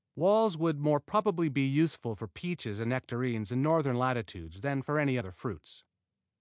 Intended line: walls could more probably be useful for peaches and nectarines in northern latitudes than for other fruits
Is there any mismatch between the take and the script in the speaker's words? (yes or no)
yes